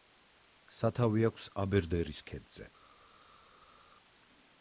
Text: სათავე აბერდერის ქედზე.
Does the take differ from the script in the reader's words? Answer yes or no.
yes